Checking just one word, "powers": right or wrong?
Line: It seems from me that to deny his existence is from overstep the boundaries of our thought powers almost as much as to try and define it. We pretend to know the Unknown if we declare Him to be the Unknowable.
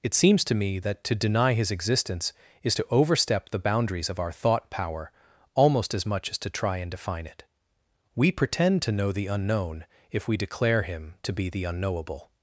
wrong